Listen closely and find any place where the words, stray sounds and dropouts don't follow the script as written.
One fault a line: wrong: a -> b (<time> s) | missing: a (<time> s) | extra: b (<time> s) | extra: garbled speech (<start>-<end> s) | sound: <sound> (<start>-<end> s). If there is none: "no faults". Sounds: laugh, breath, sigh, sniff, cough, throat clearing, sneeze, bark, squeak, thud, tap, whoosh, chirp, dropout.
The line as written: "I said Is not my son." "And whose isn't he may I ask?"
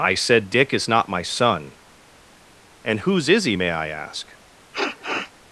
extra: Dick (0.5 s)
wrong: isn't -> is (3.3 s)
sound: sniff (4.7-5.3 s)